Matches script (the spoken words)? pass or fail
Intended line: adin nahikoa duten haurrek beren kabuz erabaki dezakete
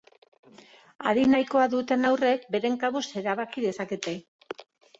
pass